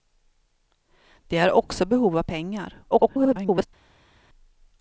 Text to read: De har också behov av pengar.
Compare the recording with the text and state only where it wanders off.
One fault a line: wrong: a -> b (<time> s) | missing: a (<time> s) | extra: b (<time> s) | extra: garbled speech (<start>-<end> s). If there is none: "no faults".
extra: garbled speech (2.9-3.7 s)